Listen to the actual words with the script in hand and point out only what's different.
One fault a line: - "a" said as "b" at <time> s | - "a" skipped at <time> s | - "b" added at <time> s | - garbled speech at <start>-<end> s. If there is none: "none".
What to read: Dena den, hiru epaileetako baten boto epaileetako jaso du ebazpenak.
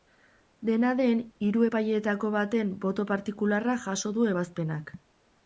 - "epaileetako" said as "partikularra" at 3.1 s